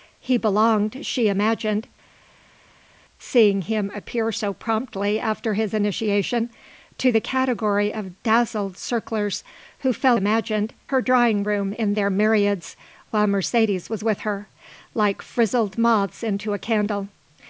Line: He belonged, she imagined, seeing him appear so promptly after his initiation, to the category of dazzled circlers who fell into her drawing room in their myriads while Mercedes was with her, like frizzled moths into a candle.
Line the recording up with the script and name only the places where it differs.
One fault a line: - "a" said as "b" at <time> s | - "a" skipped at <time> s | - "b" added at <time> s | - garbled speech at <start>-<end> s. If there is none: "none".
- "into" said as "imagined" at 10.1 s